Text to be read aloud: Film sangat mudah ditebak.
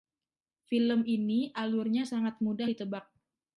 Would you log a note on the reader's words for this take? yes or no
yes